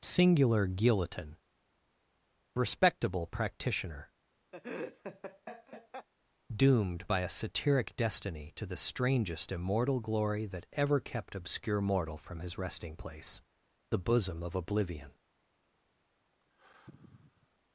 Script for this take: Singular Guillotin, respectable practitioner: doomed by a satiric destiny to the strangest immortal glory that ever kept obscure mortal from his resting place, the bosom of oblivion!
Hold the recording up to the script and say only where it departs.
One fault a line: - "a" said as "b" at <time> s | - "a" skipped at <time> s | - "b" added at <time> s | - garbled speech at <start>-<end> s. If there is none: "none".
none